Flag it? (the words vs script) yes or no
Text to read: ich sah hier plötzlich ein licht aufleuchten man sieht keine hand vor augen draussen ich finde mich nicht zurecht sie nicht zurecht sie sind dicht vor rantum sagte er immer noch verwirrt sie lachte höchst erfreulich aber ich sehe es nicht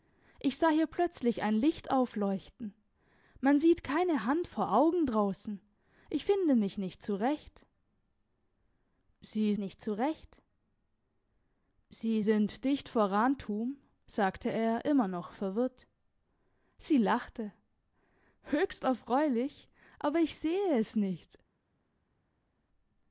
no